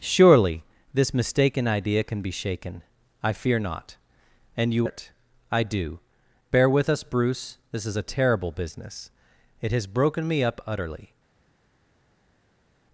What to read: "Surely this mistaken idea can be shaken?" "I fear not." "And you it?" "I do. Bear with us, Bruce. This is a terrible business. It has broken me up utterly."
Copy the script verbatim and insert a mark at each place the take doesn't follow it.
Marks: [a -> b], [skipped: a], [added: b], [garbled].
"Surely this mistaken idea can be shaken?" "I fear not." "And you it?" "I do. Bear with us, Bruce. This is a terrible business. It has broken me up utterly."